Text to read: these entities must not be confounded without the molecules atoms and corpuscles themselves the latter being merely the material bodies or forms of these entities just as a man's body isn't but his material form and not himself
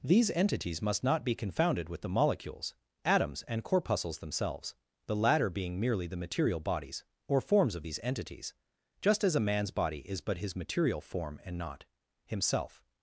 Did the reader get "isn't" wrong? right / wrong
wrong